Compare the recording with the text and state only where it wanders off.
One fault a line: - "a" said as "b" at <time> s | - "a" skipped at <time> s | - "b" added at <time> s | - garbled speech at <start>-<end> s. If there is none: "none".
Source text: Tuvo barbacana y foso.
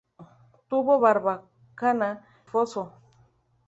- "y" skipped at 2.2 s